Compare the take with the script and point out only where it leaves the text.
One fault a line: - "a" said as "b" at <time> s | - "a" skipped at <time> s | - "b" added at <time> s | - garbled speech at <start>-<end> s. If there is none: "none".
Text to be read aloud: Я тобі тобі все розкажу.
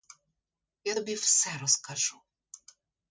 - "тобі" skipped at 1.1 s